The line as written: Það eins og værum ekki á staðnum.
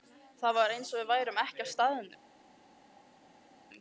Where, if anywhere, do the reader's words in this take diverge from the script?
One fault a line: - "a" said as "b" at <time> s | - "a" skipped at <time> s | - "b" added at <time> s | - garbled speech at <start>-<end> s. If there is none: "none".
- "var" added at 0.6 s
- "við" added at 1.0 s